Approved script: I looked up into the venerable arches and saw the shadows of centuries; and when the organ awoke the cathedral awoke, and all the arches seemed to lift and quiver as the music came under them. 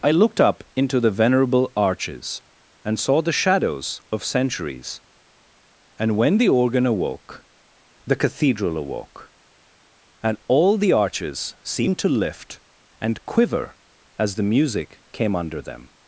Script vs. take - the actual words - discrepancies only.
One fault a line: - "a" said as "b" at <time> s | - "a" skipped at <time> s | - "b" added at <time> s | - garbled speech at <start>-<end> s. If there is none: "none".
none